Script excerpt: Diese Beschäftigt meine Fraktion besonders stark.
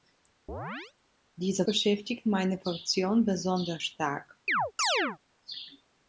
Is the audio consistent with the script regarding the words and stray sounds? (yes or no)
no